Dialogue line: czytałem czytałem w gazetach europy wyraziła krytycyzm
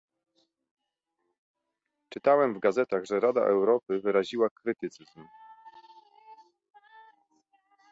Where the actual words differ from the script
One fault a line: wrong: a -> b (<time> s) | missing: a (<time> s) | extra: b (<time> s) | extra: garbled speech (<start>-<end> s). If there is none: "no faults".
missing: czytałem (2.5 s)
extra: że rada (3.0 s)